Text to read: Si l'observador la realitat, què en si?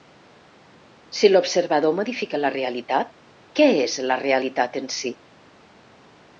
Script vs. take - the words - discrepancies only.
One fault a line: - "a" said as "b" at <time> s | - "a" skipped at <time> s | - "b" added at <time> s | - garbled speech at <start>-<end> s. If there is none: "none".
- "modifica" added at 2.0 s
- "és la realitat" added at 3.9 s